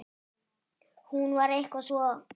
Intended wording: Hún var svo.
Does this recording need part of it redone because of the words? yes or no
yes